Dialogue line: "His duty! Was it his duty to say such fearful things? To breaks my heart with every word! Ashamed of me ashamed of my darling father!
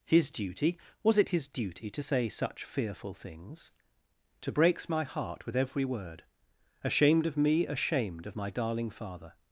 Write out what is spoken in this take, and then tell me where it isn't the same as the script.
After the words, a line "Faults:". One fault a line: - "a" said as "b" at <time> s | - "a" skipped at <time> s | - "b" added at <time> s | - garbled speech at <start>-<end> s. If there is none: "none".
"His duty! Was it his duty to say such fearful things? To breaks my heart with every word! Ashamed of me ashamed of my darling father!
Faults:
none